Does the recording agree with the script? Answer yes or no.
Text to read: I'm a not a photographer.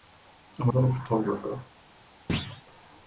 yes